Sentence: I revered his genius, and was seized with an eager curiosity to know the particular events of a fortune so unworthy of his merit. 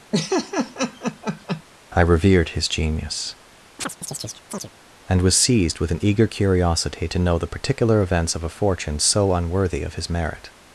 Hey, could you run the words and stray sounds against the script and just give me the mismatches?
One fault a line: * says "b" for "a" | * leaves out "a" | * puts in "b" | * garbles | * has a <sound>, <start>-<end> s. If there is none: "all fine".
* has a laugh, 0.1-1.6 s
* has a chirp, 3.8-4.7 s